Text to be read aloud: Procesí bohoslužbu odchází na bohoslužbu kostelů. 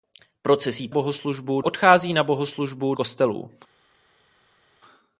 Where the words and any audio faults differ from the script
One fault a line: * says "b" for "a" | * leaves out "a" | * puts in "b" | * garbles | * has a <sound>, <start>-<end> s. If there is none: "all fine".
all fine